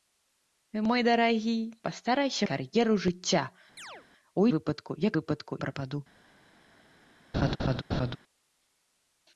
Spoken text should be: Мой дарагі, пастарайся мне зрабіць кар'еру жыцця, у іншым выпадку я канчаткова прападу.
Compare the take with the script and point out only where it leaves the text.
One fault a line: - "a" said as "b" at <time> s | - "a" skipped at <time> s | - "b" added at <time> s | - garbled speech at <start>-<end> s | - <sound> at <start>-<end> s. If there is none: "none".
- "мне зрабіць" skipped at 2.4 s
- chirp at 3.8-4.1 s
- "іншым" skipped at 4.5 s
- "канчаткова" said as "выпадку" at 5.2 s
- laugh at 7.3-8.2 s